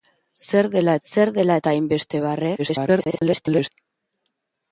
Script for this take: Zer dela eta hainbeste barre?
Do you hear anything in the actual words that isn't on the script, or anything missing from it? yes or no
yes